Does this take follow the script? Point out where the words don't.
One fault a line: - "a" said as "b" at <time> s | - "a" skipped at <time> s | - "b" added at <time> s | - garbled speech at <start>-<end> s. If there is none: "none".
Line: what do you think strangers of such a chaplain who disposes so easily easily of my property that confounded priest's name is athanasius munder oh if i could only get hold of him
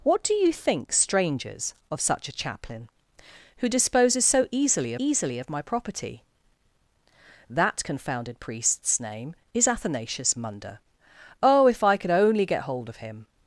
none